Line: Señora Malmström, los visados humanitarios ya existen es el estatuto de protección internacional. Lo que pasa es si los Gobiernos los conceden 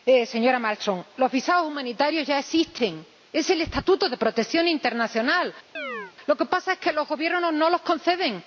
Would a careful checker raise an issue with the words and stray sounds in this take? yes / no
yes